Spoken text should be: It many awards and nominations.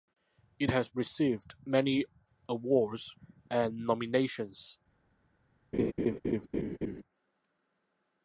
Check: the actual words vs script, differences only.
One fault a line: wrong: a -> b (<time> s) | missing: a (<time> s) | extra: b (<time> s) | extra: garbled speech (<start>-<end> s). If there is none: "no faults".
extra: has received (0.7 s)